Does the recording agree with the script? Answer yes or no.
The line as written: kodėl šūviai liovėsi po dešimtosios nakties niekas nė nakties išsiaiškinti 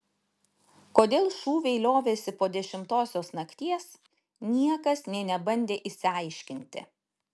no